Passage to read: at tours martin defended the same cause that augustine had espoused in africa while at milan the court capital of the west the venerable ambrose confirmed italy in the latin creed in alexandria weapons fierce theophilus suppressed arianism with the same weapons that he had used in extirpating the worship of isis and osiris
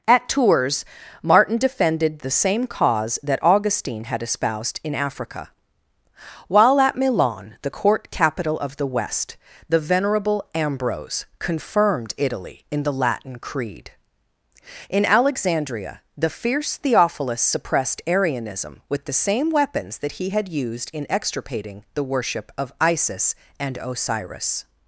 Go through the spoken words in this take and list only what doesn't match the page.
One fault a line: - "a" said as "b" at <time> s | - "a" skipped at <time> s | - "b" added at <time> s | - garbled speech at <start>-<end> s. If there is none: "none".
- "weapons" said as "the" at 16.2 s